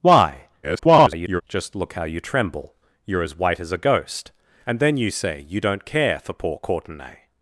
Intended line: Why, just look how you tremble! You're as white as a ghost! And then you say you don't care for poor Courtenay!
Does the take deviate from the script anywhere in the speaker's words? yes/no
yes